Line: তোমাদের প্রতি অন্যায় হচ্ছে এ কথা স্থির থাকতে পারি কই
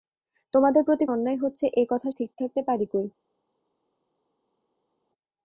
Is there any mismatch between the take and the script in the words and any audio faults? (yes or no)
no